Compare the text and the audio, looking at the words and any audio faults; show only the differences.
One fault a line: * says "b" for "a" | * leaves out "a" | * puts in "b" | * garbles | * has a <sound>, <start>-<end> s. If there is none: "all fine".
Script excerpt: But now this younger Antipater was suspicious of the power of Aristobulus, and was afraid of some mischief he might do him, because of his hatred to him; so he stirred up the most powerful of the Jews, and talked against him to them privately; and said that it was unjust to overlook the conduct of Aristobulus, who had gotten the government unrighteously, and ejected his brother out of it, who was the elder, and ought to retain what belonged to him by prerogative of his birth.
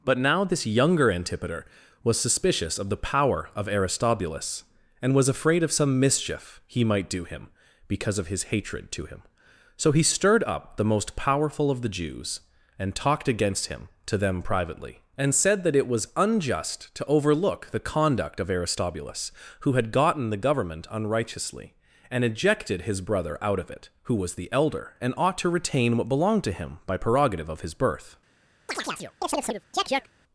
* has a chirp, 28.7-30.1 s